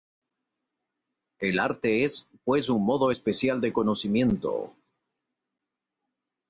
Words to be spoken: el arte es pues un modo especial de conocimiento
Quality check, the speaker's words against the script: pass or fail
pass